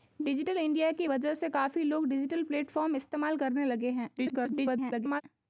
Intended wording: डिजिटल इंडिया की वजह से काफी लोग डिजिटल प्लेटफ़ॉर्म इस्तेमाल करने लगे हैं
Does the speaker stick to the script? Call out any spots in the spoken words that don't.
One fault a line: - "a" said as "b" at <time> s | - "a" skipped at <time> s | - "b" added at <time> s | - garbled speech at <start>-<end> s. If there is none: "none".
- garbled speech at 4.2-5.2 s